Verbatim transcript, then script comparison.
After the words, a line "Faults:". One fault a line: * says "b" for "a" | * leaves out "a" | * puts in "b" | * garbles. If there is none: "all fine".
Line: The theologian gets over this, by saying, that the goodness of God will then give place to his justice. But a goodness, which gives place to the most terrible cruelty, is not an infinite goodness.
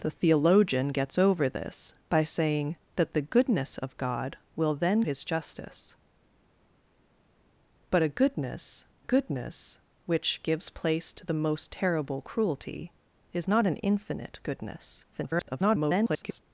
The theologian gets over this, by saying, that the goodness of God will then his justice. But a goodness goodness, which gives place to the most terrible cruelty, is not an infinite goodness. [garbled]
Faults:
* leaves out "give place to"
* puts in "goodness"
* garbles